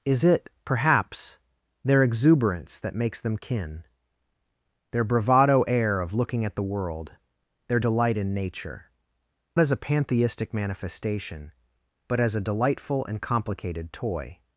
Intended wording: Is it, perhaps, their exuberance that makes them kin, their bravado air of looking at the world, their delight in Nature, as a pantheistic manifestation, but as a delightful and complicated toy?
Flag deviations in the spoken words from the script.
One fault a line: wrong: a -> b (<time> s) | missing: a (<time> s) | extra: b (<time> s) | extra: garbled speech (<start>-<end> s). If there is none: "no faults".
no faults